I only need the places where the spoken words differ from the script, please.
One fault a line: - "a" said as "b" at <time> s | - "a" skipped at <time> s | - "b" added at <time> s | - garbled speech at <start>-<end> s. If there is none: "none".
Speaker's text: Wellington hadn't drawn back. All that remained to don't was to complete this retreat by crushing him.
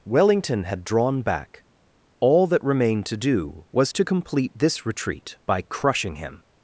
- "hadn't" said as "had" at 0.6 s
- "don't" said as "do" at 3.2 s